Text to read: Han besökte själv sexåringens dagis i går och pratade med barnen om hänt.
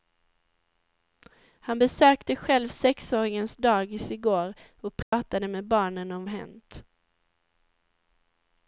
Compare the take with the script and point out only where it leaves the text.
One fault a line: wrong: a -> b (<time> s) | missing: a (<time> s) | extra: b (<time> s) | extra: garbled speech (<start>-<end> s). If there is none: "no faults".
no faults